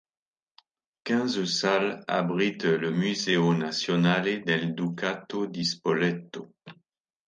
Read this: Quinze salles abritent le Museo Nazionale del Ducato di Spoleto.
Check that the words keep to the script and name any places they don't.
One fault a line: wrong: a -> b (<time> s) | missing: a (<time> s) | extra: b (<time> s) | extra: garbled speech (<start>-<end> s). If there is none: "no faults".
no faults